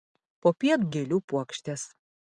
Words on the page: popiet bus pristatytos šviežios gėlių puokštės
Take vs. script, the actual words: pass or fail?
fail